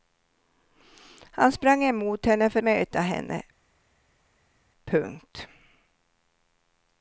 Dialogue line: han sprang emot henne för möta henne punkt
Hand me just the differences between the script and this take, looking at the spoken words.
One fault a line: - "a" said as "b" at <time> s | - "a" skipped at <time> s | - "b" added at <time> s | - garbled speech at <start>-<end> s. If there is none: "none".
none